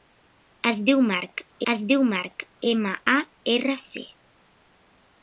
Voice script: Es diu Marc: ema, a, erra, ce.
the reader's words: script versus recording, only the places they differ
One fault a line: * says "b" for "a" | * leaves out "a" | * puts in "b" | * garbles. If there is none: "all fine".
* puts in "es diu Marc"